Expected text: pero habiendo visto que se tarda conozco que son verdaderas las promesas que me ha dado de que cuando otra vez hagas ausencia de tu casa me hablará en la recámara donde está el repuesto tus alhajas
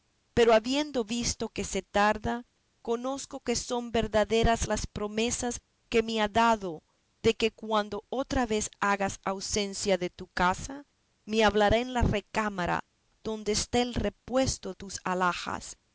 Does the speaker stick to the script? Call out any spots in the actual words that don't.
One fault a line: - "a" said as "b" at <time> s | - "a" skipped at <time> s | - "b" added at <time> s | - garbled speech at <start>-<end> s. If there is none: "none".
none